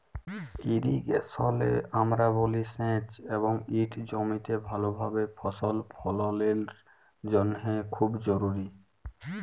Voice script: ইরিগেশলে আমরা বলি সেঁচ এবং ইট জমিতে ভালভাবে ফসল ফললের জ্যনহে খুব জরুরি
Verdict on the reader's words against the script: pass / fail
pass